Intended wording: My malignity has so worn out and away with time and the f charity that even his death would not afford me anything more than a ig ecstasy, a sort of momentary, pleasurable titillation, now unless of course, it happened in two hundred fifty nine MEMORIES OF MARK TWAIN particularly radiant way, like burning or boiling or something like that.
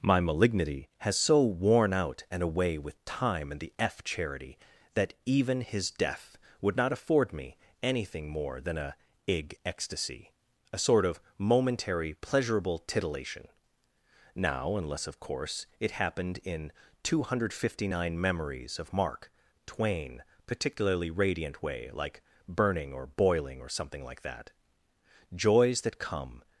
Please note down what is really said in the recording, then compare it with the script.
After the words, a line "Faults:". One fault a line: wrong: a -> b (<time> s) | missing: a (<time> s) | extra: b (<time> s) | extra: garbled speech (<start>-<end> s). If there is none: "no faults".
My malignity has so worn out and away with time and the f charity that even his death would not afford me anything more than a ig ecstasy, a sort of momentary, pleasurable titillation, now unless of course, it happened in two hundred fifty nine MEMORIES OF MARK TWAIN particularly radiant way, like burning or boiling or something like that. Joys that come
Faults:
extra: Joys that come (25.3 s)